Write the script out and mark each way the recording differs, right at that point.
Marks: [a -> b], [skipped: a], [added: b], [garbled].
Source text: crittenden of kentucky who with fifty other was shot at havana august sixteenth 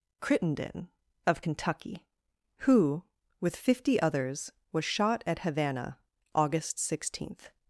crittenden of kentucky who with fifty [other -> others] was shot at havana august sixteenth